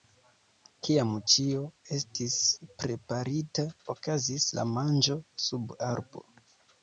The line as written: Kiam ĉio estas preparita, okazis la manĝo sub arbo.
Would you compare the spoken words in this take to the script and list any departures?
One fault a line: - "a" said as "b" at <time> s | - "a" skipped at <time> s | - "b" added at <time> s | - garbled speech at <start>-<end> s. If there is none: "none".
- "estas" said as "estis" at 2.0 s